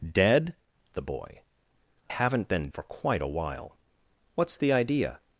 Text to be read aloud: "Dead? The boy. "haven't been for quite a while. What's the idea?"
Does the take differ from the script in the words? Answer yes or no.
no